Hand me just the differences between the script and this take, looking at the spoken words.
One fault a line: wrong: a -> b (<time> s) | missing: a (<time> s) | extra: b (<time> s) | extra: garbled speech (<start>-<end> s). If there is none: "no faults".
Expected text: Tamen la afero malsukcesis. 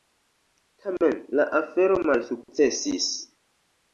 no faults